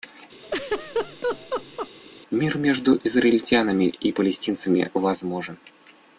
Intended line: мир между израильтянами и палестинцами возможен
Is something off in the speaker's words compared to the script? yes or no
no